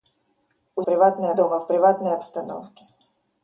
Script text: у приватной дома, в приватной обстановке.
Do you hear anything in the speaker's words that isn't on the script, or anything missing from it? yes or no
no